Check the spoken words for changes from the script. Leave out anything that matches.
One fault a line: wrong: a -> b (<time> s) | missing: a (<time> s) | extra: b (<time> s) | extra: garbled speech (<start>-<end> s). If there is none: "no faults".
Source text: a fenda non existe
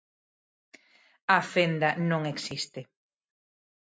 no faults